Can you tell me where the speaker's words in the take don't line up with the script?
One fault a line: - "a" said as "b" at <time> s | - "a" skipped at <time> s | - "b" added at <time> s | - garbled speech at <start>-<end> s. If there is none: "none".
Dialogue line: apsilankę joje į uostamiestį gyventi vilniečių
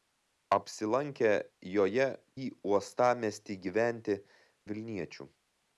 none